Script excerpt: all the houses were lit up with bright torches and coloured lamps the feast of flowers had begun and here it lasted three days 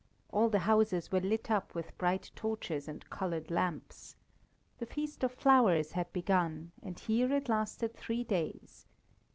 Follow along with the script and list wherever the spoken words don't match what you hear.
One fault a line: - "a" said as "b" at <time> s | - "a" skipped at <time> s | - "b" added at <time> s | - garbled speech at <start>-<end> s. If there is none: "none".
none